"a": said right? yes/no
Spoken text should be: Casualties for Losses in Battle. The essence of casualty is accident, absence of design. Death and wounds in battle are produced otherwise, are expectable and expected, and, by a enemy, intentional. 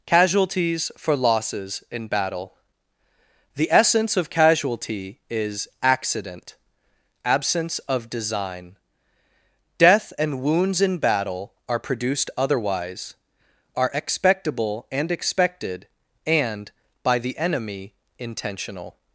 no